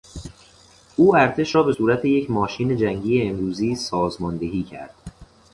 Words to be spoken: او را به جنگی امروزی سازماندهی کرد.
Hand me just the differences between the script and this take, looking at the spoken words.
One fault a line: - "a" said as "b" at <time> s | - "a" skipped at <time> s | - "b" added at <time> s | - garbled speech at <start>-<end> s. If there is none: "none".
- "ارتش" added at 1.1 s
- "صورت یک ماشین" added at 1.7 s